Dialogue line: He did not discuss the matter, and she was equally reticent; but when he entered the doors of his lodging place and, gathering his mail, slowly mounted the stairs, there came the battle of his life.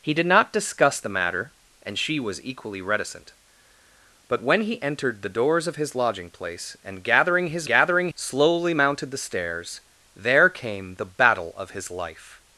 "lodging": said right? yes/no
yes